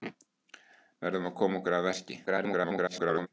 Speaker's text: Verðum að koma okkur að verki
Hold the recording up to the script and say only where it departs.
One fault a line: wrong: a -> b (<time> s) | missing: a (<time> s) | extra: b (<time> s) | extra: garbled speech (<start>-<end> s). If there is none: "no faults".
extra: garbled speech (2.3-3.3 s)